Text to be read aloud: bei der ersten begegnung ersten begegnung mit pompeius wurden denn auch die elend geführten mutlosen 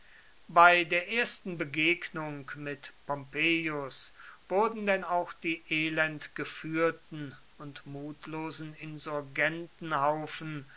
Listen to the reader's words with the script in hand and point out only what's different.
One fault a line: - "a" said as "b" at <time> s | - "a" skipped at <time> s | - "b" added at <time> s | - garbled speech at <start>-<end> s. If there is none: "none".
- "ersten begegnung" skipped at 2.5 s
- "und" added at 7.6 s